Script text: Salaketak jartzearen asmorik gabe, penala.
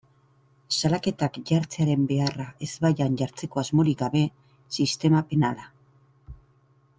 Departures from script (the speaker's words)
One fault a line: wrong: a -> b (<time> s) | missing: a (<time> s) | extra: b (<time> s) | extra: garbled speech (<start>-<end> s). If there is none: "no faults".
extra: beharra ezbaian jartzeko (2.1 s)
extra: sistema (4.8 s)